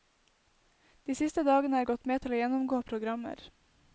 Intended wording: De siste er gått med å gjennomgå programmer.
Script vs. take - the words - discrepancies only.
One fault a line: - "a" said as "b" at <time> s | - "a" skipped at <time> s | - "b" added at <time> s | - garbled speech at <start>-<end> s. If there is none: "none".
- "dagene" added at 1.5 s
- "til" added at 2.2 s